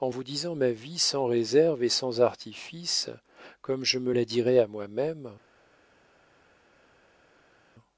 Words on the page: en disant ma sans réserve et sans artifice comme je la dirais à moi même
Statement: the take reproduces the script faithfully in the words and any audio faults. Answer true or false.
false